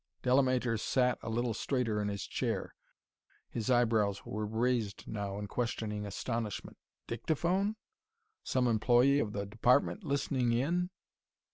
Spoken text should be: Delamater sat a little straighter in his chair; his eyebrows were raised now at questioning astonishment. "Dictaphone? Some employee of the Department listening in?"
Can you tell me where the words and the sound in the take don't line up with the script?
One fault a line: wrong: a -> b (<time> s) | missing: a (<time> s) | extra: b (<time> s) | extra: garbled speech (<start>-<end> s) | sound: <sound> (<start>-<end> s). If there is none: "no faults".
wrong: at -> in (5.4 s)